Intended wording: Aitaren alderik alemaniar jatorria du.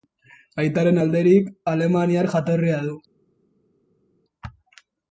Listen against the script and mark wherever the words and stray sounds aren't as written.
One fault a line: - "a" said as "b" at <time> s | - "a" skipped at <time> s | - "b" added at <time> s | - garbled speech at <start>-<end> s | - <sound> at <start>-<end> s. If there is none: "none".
none